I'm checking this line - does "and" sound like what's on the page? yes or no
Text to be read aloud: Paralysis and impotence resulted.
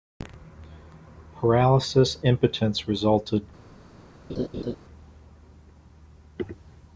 no